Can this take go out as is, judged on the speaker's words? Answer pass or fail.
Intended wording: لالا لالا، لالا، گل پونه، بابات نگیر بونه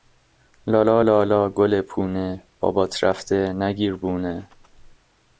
fail